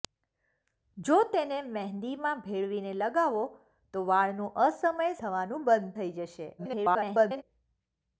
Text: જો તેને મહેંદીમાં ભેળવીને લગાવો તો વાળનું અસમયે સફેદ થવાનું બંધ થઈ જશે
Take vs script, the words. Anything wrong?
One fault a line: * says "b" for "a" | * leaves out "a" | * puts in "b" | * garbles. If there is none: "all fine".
* leaves out "સફેદ"
* garbles